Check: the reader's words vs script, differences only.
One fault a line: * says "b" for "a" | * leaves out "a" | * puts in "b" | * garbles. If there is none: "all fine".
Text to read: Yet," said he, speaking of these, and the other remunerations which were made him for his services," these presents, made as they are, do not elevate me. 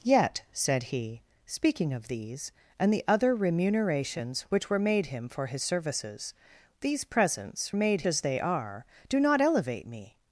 all fine